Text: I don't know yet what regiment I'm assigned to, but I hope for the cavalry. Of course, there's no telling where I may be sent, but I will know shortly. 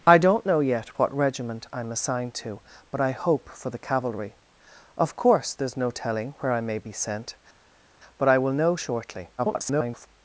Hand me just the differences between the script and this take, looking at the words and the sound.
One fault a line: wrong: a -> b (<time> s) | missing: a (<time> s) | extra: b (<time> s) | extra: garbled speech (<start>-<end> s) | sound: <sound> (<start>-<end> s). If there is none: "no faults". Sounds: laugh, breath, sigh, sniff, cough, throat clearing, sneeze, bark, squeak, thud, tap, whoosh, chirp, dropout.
extra: garbled speech (9.4-10.1 s)